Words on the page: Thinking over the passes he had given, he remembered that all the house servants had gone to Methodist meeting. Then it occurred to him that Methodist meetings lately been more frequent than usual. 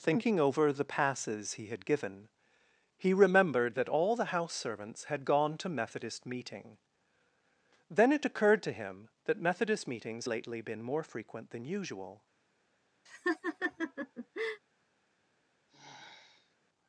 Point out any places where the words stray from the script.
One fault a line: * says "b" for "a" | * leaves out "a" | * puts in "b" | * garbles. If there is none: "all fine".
all fine